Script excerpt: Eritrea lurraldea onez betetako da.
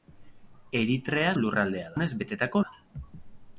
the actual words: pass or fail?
pass